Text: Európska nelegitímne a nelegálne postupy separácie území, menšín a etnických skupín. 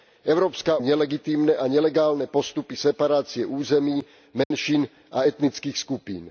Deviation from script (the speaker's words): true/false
false